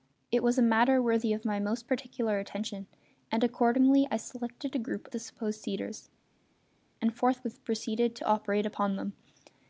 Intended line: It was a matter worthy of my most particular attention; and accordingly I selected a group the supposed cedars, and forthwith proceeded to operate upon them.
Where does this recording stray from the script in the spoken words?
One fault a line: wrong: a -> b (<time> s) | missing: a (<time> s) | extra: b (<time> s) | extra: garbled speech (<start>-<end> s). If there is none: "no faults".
no faults